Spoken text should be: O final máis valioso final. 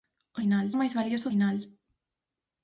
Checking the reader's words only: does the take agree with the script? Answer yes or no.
yes